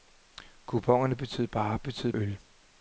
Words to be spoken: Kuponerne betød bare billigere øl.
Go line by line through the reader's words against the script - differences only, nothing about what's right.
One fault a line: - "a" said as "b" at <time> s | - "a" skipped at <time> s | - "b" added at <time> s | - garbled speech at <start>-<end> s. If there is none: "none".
- "billigere" said as "betød" at 1.8 s